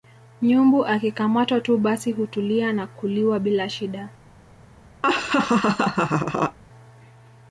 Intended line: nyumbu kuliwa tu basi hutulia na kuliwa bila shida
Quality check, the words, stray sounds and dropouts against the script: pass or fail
fail